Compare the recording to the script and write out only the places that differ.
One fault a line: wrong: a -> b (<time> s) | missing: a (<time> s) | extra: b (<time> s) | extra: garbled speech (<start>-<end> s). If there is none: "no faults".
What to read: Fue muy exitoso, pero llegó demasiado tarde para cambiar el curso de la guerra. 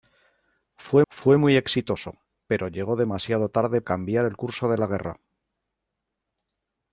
extra: fue (1.1 s)
missing: para (3.8 s)